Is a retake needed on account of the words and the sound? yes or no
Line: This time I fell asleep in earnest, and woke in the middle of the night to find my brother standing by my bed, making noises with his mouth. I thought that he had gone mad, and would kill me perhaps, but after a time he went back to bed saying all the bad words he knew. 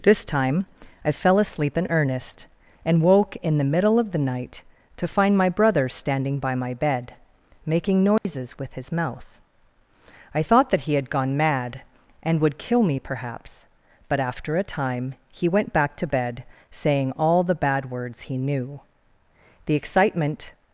yes